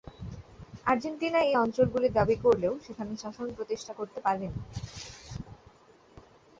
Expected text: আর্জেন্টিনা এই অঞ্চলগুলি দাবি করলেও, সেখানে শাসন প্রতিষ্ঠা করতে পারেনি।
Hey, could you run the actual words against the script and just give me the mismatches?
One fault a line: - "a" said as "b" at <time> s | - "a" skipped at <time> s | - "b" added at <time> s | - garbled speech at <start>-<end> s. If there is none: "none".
none